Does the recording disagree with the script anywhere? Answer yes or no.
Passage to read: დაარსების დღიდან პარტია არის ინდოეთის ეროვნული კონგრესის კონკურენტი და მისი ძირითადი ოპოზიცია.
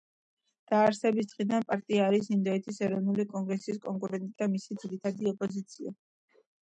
no